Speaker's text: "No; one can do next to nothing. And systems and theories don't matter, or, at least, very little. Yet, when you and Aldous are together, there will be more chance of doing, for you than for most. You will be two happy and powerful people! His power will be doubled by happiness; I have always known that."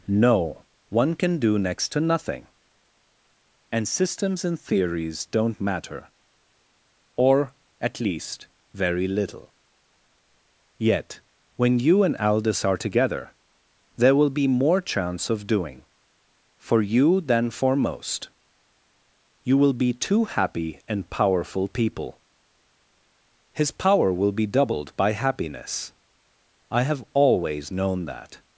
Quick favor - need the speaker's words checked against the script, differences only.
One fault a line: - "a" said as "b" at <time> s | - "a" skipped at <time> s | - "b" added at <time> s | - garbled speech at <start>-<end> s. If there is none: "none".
none